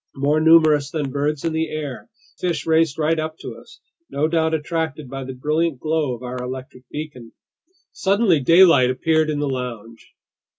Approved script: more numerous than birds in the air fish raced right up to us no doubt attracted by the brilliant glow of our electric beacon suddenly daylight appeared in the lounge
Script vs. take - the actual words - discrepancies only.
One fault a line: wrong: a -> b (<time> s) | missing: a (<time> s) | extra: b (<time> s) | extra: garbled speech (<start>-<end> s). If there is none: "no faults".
no faults